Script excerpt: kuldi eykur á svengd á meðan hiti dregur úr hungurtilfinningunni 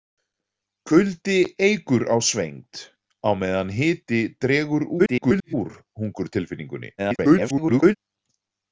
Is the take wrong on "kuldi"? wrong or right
right